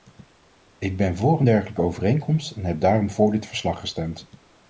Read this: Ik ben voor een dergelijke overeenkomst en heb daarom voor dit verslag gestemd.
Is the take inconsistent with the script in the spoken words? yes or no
no